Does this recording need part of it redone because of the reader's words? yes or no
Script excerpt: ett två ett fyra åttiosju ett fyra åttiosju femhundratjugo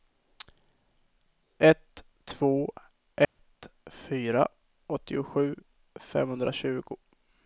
yes